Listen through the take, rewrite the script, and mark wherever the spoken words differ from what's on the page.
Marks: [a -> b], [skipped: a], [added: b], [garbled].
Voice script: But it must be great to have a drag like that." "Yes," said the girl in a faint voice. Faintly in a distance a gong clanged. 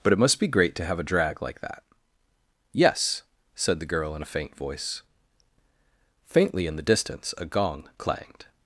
But it must be great to have a drag like that." "Yes," said the girl in a faint voice. Faintly in [a -> the] distance a gong clanged.